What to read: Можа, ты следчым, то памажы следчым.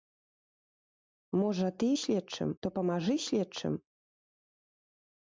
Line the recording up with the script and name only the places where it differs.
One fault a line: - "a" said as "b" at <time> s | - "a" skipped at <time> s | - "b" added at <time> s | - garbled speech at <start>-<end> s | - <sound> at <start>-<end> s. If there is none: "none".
none